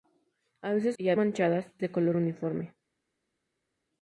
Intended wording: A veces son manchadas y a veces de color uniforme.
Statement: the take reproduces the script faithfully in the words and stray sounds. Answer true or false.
false